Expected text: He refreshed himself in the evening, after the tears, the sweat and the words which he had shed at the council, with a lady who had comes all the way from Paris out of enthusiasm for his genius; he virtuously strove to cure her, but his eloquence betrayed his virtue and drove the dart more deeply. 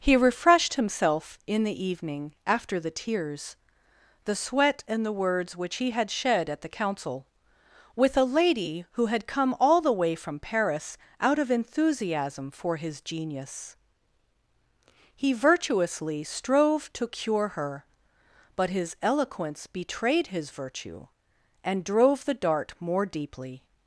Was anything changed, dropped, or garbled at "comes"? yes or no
yes